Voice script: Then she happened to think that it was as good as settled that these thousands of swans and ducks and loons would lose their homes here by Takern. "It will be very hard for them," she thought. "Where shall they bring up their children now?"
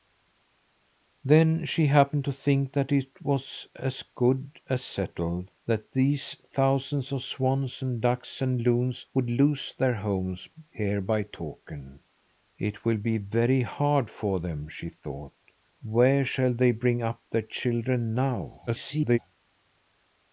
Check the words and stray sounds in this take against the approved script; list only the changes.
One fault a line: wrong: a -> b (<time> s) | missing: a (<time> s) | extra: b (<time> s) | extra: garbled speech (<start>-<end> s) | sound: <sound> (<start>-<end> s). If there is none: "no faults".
extra: garbled speech (18.7-19.2 s)